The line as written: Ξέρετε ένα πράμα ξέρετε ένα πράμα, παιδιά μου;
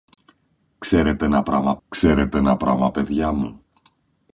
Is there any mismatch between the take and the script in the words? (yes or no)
no